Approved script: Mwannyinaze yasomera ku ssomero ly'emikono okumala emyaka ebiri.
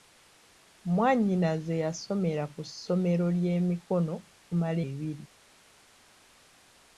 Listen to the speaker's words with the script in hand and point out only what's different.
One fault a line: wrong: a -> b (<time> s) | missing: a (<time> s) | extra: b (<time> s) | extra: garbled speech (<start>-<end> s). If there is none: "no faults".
missing: emyaka (4.8 s)